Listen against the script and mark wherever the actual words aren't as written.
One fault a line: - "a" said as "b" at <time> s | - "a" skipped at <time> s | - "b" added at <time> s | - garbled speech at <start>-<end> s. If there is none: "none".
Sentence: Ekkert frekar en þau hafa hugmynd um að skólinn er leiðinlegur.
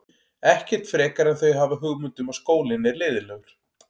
none